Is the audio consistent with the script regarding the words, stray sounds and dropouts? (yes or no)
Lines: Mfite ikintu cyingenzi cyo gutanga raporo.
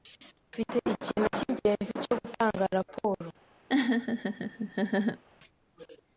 no